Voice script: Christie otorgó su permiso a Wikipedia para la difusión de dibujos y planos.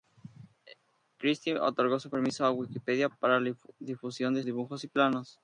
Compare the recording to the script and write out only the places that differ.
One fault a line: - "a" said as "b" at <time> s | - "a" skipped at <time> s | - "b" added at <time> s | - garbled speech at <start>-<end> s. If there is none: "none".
none